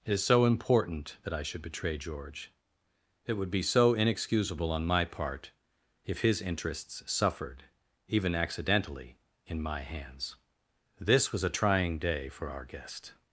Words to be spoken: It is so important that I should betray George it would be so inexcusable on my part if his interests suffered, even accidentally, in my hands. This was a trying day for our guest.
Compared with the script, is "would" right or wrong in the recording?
right